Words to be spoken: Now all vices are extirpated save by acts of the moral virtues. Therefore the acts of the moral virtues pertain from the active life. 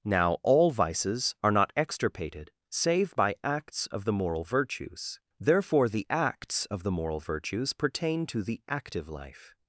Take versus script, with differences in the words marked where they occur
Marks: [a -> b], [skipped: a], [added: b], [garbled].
Now all vices are [added: not] extirpated save by acts of the moral virtues. Therefore the acts of the moral virtues pertain [from -> to] the active life.